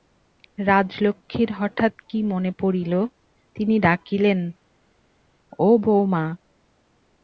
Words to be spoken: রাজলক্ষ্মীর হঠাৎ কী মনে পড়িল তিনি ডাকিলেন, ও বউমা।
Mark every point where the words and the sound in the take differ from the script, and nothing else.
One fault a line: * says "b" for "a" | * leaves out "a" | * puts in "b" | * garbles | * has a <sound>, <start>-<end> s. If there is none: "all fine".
all fine